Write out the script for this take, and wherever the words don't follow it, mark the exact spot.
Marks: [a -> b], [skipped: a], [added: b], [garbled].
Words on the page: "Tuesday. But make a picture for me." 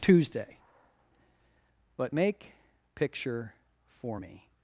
"Tuesday. But make [skipped: a] picture for me."